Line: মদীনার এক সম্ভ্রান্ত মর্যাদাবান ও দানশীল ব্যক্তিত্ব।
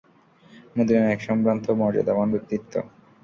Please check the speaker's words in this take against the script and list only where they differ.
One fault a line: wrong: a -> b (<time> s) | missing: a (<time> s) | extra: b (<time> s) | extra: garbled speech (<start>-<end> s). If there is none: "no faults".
missing: ও দানশীল (2.3 s)